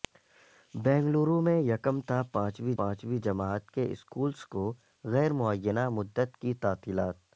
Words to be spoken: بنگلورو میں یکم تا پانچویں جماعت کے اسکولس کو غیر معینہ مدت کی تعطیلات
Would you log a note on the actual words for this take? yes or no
yes